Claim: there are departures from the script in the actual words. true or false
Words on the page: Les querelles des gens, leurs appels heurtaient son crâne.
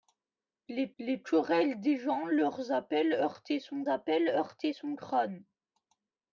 true